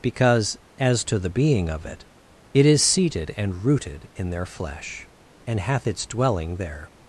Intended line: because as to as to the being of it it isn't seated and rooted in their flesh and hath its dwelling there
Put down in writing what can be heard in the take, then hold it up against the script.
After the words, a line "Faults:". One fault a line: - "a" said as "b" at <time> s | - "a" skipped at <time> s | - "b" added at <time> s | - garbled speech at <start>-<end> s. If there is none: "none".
because as to the being of it it is seated and rooted in their flesh and hath its dwelling there
Faults:
- "as to" skipped at 1.2 s
- "isn't" said as "is" at 2.7 s